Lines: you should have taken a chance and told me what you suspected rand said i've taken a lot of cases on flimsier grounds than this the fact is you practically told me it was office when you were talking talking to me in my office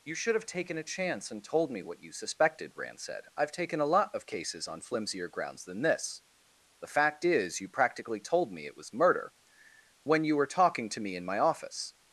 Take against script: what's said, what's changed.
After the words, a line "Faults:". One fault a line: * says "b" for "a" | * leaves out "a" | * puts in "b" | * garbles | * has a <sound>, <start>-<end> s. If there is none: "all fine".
you should have taken a chance and told me what you suspected rand said i've taken a lot of cases on flimsier grounds than this the fact is you practically told me it was murder when you were talking to me in my office
Faults:
* says "murder" for "office"
* leaves out "talking"